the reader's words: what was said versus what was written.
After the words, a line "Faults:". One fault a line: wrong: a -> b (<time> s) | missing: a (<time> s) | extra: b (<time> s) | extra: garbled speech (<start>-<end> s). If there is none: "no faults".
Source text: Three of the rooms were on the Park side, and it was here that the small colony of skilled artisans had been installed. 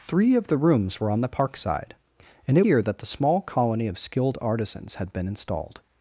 Three of the rooms were on the Park side, and it here that the small colony of skilled artisans had been installed.
Faults:
missing: was (2.6 s)